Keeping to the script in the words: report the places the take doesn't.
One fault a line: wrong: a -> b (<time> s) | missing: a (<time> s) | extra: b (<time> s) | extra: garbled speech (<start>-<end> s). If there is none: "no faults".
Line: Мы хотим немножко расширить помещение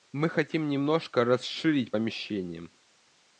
no faults